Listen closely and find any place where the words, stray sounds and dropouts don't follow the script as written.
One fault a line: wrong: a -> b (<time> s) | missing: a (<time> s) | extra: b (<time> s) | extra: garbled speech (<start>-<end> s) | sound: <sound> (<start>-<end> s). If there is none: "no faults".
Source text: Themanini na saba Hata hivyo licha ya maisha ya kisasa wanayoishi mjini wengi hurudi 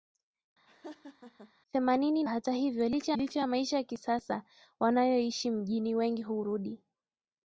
sound: laugh (0.7-1.5 s)
missing: na saba (2.2 s)
extra: licha (3.2 s)